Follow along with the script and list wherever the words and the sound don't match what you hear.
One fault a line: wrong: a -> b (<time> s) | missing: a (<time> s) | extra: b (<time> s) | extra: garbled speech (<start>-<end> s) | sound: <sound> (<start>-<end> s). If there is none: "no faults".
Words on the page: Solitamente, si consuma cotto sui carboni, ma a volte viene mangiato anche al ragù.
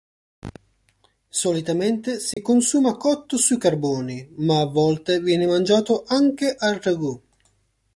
sound: dropout (2.3-2.4 s)